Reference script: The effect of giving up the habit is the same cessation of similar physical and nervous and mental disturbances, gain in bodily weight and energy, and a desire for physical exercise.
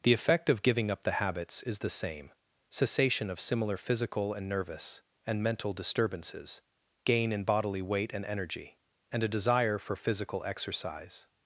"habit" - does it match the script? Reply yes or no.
no